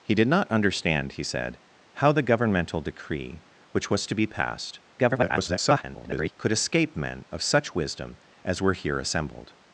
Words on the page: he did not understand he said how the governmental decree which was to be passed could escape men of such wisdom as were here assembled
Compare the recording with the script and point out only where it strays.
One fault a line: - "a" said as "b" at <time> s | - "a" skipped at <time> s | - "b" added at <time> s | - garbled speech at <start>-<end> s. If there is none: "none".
- garbled speech at 5.0-6.3 s